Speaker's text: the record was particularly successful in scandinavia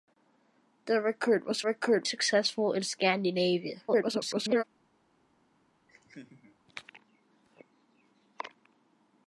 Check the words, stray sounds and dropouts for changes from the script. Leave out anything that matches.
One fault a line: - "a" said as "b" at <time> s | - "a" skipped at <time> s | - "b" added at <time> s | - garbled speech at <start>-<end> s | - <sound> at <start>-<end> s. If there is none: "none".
- "particularly" said as "record" at 1.6 s
- garbled speech at 3.9-4.6 s
- laugh at 5.9-6.6 s